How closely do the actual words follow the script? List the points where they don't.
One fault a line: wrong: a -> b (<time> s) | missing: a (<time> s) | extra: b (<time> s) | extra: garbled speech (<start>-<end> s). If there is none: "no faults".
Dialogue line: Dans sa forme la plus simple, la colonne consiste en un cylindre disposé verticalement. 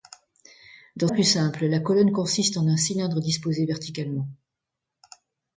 missing: sa forme la (1.1 s)